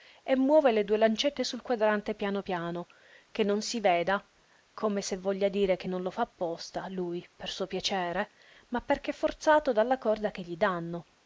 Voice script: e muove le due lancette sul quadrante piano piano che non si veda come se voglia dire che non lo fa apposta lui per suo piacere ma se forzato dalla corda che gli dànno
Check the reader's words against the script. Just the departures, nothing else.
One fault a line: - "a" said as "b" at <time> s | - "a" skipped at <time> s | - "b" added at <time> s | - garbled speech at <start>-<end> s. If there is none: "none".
- "se" said as "perché" at 8.8 s